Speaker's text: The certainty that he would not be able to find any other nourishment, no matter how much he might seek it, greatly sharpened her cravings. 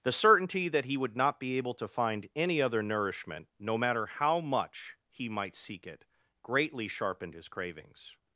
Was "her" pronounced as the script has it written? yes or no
no